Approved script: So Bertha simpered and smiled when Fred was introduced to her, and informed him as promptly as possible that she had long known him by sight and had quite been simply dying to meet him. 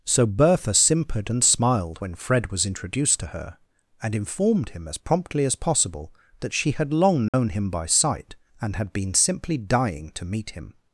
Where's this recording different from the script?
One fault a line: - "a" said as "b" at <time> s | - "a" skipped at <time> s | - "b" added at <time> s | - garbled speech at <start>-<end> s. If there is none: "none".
- "quite" skipped at 8.9 s